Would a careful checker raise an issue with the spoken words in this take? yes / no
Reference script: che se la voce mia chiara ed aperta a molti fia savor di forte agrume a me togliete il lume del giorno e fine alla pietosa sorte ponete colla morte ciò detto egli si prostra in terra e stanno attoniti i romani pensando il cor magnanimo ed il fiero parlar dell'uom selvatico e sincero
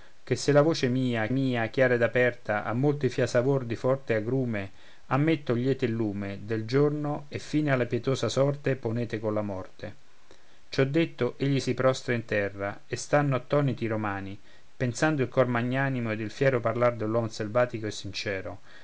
yes